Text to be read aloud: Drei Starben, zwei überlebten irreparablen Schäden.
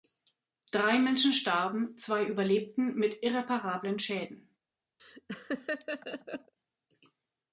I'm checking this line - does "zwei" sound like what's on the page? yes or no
yes